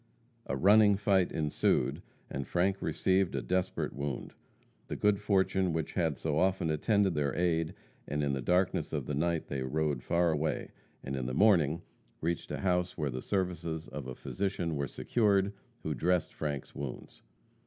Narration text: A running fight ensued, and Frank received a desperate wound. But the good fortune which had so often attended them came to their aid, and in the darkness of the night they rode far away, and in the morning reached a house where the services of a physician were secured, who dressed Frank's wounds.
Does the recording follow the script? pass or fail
fail